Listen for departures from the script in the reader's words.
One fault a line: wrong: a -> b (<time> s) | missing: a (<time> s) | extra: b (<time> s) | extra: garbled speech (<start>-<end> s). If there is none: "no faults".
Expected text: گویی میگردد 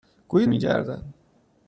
no faults